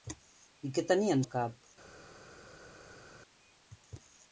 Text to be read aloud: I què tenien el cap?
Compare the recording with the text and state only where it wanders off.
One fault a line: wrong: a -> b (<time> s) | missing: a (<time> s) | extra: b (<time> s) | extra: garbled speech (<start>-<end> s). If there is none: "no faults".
no faults